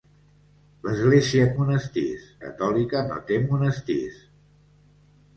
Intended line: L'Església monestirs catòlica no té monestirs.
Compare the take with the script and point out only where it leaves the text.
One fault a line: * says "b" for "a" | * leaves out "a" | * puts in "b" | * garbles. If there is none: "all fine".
all fine